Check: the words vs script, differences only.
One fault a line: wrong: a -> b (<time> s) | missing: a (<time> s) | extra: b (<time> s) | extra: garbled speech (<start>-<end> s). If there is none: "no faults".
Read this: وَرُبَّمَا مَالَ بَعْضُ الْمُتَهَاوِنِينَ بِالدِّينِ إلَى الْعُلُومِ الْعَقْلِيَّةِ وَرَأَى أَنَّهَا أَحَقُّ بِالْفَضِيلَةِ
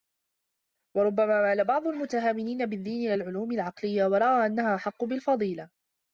no faults